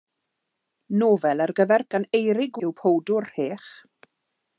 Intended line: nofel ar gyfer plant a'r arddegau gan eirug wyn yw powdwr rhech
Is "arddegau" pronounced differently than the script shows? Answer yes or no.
yes